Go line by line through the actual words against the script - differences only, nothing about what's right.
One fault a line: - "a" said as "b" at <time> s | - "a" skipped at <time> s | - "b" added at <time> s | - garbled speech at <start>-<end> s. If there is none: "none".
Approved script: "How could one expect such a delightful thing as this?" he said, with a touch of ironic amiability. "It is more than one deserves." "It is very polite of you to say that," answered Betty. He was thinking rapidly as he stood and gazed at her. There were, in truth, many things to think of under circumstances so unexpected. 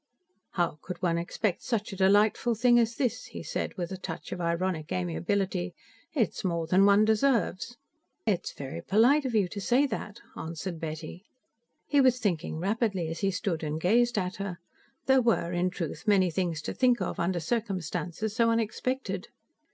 none